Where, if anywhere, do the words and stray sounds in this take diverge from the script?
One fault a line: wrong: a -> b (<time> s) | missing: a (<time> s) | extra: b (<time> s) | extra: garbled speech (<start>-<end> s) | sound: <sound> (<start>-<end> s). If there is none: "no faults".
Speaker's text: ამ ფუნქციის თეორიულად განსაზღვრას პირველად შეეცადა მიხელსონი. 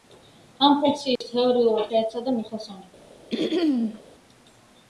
sound: dropout (1.2-1.2 s)
missing: განსაზღვრას პირველად (1.9 s)
sound: throat clearing (3.3-4.0 s)